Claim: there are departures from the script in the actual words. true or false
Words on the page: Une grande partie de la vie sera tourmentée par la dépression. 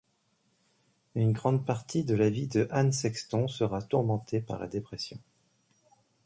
true